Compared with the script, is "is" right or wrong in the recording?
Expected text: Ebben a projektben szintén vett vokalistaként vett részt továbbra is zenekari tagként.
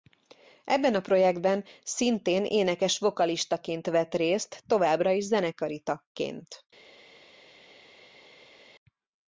right